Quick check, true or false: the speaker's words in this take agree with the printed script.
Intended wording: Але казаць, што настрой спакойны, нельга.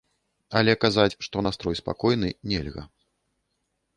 true